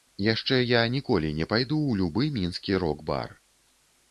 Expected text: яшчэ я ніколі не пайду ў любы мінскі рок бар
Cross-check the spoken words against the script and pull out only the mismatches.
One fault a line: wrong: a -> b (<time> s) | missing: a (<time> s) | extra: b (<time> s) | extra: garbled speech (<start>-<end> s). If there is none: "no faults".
no faults